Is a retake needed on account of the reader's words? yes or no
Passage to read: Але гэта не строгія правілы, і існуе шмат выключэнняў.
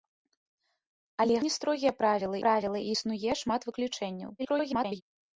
yes